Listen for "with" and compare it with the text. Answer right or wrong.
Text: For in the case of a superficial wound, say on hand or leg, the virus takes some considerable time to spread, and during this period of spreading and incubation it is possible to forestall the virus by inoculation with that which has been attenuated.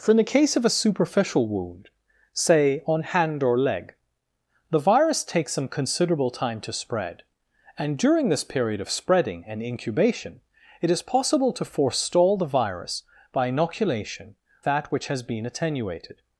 wrong